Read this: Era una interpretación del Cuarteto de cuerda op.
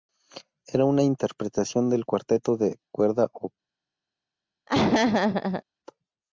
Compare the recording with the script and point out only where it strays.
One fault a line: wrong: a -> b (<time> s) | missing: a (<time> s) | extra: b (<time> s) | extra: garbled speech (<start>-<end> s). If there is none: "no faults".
no faults